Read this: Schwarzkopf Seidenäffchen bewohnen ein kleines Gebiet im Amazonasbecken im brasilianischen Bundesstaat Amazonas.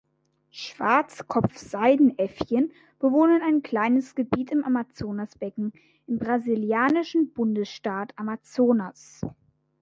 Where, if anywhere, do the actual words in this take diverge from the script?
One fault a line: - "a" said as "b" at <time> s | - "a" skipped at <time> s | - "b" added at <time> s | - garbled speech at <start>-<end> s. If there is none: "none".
none